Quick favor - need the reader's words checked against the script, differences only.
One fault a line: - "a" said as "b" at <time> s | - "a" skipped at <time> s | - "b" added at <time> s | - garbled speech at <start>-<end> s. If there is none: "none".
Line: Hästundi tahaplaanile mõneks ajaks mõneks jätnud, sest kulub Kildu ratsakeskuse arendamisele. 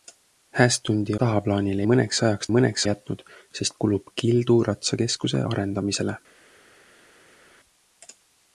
none